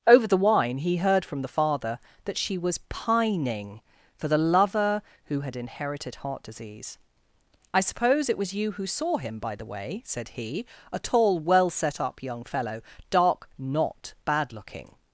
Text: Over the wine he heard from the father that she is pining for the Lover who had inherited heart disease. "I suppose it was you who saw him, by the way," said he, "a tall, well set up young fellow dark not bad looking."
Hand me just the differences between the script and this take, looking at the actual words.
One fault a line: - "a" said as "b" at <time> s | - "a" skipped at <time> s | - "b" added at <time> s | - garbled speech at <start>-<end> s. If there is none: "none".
- "is" said as "was" at 2.6 s